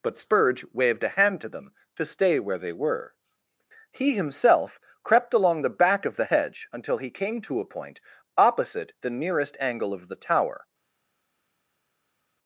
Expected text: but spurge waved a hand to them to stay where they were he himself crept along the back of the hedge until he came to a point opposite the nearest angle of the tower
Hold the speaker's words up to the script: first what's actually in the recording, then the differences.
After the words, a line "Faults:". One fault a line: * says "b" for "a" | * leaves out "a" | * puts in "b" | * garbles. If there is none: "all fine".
but spurge waved a hand to them to stay where they were he himself crept along the back of the hedge until he came to a point opposite the nearest angle of the tower
Faults:
all fine